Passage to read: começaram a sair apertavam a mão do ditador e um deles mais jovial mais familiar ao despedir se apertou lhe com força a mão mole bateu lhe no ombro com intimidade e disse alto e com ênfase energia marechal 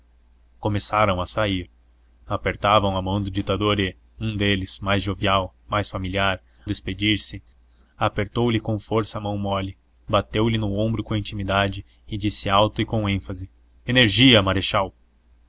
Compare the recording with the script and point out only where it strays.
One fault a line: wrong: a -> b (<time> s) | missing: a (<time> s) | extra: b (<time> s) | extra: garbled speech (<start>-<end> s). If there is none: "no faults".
missing: ao (6.4 s)